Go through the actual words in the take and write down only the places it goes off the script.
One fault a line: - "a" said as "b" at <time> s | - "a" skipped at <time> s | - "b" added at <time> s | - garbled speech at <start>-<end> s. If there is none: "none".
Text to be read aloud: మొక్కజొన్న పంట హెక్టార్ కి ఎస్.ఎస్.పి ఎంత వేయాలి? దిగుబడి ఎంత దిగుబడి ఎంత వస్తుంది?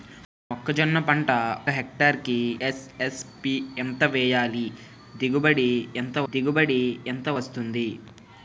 none